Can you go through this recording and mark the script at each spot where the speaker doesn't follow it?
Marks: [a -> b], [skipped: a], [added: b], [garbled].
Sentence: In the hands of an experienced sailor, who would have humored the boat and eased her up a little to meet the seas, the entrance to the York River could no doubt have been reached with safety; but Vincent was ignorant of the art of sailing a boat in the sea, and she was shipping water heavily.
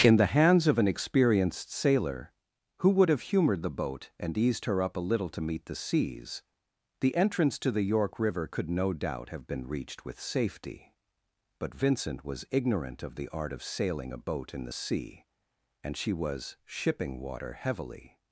In the hands of an experienced sailor, who would have humored the boat and eased her up a little to meet the seas, the entrance to the York River could no doubt have been reached with safety; but Vincent was ignorant of the art of sailing a boat in the sea, and she was shipping water heavily.